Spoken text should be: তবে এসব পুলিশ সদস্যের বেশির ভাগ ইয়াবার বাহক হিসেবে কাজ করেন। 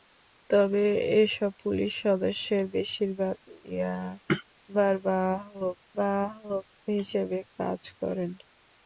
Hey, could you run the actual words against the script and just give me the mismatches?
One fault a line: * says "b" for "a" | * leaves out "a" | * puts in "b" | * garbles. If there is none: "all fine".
* puts in "বাহক"